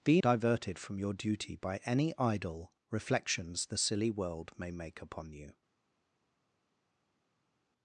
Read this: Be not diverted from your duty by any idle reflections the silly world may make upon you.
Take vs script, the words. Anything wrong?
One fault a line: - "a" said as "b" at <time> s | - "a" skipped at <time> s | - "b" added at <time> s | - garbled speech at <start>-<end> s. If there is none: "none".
- "not" skipped at 0.2 s